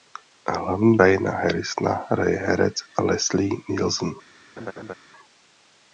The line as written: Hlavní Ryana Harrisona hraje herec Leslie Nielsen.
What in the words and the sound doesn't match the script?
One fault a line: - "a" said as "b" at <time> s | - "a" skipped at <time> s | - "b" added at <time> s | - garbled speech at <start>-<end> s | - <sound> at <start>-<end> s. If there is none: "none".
- laugh at 4.6-4.9 s